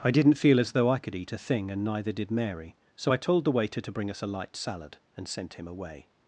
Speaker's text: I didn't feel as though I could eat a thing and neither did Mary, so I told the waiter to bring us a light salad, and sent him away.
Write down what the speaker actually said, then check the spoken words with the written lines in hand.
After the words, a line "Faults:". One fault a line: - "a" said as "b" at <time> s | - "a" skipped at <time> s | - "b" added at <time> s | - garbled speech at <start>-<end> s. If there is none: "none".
I didn't feel as though I could eat a thing and neither did Mary, so I told the waiter to bring us a light salad, and sent him away.
Faults:
none